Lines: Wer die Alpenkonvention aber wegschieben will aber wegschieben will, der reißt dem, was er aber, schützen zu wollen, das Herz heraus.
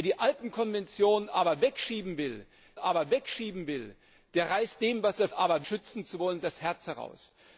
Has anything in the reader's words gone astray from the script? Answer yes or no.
no